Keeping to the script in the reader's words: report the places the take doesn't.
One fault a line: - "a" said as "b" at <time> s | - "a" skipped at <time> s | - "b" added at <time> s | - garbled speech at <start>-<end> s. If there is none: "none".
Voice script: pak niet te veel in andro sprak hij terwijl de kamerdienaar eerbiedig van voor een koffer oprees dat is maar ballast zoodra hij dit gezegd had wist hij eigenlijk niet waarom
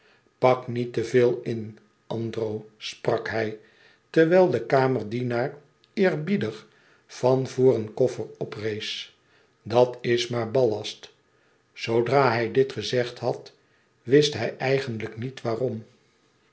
none